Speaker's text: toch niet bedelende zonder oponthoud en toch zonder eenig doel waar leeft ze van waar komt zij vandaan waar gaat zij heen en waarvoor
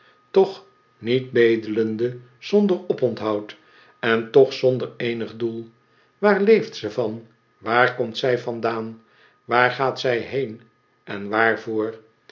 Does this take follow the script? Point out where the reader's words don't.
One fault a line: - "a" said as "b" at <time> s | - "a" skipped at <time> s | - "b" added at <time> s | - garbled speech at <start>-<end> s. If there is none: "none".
none